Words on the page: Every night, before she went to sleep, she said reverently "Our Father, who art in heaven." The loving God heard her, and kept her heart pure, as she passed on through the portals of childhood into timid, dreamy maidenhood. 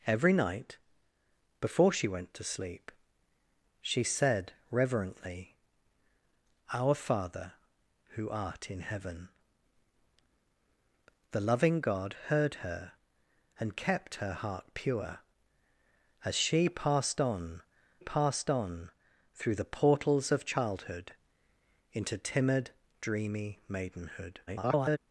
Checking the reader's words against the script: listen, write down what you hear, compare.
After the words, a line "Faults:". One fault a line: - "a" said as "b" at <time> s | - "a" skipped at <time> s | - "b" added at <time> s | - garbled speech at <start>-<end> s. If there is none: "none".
Every night, before she went to sleep, she said reverently "Our Father, who art in heaven." The loving God heard her, and kept her heart pure, as she passed on passed on through the portals of childhood into timid, dreamy maidenhood. [garbled]
Faults:
- "passed on" added at 18.0 s
- garbled speech at 24.5-25.0 s